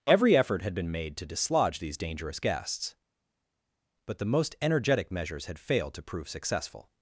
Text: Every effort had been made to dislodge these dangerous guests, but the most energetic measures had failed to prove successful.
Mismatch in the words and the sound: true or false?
false